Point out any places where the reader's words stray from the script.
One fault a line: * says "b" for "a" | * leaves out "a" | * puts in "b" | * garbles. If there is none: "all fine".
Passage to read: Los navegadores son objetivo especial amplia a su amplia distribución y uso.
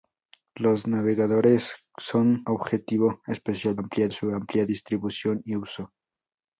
all fine